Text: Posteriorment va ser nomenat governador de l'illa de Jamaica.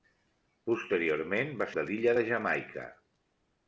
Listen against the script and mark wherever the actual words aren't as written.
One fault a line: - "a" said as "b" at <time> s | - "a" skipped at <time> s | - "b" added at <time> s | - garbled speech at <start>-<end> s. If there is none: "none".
- "ser nomenat governador" skipped at 1.7 s